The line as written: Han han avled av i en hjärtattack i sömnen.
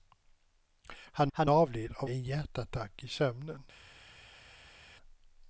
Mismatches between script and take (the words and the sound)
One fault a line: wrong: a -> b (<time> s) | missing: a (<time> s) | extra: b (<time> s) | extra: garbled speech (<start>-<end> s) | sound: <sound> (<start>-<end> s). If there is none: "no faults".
no faults